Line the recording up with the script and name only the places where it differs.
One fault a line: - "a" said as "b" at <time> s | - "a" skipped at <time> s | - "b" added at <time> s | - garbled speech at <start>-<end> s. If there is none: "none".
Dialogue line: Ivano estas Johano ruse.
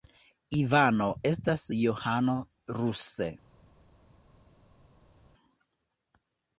none